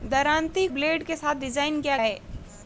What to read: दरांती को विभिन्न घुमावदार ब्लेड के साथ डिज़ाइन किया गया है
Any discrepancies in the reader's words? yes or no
yes